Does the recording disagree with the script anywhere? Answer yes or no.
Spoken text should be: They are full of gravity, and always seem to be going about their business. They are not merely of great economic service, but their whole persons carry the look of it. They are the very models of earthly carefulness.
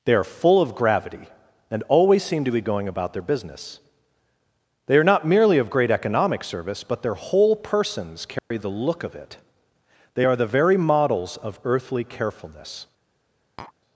no